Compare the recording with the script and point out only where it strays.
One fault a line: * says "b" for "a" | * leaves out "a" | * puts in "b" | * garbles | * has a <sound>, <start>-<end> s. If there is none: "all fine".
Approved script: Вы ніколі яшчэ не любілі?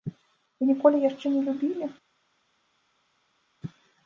all fine